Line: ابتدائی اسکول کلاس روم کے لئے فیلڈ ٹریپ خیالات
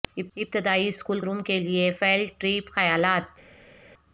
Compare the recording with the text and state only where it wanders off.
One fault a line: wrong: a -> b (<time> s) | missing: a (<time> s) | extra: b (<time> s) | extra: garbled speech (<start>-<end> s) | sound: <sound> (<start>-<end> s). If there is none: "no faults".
missing: کلاس (1.2 s)